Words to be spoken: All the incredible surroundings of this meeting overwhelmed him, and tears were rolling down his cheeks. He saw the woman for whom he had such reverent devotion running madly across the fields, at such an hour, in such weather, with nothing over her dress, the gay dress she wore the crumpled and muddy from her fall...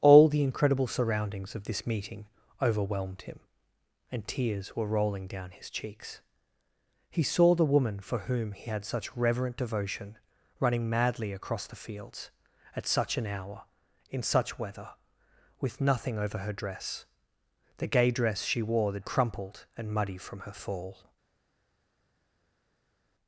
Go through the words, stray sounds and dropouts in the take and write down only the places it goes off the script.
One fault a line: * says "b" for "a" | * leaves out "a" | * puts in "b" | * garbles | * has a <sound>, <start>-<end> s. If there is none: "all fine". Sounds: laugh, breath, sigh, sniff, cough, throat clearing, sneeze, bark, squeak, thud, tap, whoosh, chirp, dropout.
all fine